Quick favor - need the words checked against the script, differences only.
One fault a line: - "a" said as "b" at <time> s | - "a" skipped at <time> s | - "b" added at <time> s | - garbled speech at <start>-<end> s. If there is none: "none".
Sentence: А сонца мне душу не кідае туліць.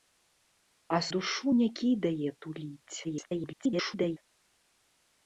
- "сонца мне" skipped at 1.0 s
- garbled speech at 3.0-4.2 s